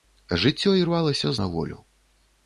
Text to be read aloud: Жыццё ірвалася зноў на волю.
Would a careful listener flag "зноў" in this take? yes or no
yes